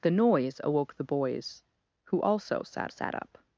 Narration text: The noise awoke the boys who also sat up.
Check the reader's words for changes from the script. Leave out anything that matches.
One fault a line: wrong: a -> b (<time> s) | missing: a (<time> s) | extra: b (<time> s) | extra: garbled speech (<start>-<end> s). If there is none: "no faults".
extra: sat (2.9 s)